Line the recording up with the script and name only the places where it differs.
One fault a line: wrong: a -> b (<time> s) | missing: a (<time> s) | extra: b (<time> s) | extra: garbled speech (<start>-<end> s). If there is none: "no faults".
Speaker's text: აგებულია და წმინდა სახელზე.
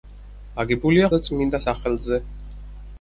no faults